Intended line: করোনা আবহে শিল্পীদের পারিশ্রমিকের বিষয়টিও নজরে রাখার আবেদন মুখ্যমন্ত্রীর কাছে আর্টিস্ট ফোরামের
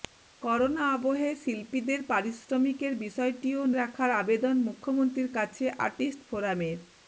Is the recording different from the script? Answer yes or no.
yes